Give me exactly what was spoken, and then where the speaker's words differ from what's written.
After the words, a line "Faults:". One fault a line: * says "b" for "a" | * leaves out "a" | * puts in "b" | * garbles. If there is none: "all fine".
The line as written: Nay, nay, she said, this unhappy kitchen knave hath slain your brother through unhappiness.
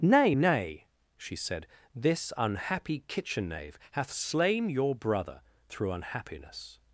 Nay, nay, she said, this unhappy kitchen knave hath slain your brother through unhappiness.
Faults:
all fine